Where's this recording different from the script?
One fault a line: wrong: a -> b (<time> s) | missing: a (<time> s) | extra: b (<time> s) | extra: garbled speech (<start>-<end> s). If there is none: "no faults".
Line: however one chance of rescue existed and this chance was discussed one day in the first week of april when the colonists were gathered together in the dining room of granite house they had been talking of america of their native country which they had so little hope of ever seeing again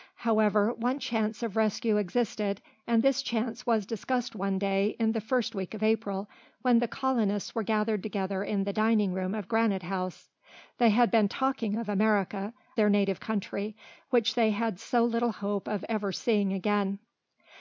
missing: of (12.5 s)